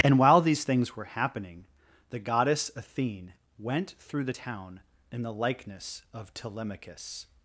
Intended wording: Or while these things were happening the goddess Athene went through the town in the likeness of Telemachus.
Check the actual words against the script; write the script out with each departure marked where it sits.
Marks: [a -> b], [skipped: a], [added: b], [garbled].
[Or -> And] while these things were happening the goddess Athene went through the town in the likeness of Telemachus.